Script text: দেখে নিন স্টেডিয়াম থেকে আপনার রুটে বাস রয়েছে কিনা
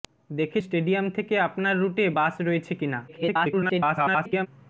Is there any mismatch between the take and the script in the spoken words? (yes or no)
yes